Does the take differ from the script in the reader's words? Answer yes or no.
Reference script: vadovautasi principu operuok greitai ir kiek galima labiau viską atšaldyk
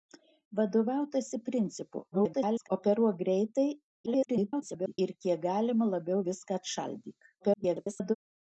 yes